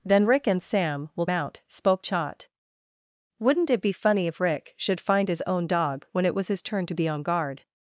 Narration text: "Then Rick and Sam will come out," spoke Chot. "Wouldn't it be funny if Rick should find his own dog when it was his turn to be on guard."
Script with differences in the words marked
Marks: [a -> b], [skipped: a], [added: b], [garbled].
"Then Rick and Sam will [skipped: come] out," spoke Chot. "Wouldn't it be funny if Rick should find his own dog when it was his turn to be on guard."